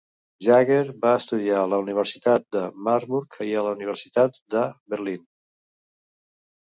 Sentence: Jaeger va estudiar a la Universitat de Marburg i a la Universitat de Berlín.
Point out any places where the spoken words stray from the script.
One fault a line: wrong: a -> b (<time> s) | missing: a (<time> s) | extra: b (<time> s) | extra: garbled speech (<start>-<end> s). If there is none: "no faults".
no faults